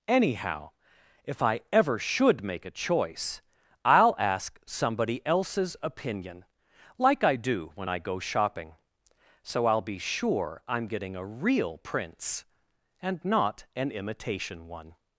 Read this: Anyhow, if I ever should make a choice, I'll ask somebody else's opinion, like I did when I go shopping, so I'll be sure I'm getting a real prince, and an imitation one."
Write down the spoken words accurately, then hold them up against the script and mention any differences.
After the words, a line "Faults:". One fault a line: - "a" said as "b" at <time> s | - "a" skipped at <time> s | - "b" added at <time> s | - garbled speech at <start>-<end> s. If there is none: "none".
Anyhow, if I ever should make a choice, I'll ask somebody else's opinion, like I do when I go shopping, so I'll be sure I'm getting a real prince, and not an imitation one."
Faults:
- "did" said as "do" at 7.3 s
- "not" added at 13.2 s